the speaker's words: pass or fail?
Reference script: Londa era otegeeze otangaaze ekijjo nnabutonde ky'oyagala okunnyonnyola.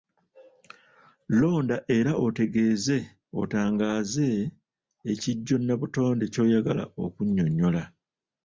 pass